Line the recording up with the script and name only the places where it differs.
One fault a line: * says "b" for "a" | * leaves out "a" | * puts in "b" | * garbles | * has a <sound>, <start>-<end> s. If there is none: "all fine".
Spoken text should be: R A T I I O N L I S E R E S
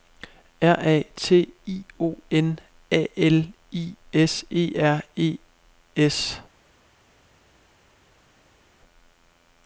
* leaves out "I"
* puts in "A"